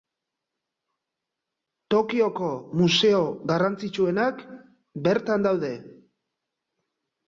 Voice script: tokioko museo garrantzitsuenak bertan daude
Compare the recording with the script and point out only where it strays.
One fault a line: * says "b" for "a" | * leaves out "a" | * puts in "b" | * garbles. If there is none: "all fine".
all fine